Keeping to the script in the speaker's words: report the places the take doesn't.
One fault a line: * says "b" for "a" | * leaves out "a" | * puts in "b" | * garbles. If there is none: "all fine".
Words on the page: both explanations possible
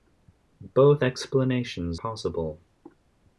all fine